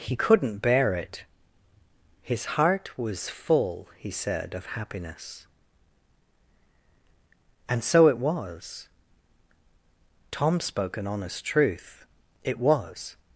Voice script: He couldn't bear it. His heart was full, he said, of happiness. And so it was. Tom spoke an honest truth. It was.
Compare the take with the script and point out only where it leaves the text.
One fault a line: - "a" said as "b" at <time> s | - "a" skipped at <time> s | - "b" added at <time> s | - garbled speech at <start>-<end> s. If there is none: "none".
none